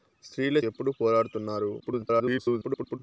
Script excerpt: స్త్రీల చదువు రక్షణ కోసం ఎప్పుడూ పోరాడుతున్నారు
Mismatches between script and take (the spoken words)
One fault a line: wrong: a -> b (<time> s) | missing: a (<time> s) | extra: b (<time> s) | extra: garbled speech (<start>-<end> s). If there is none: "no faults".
missing: చదువు రక్షణ కోసం (0.6 s)
extra: garbled speech (1.8-3.0 s)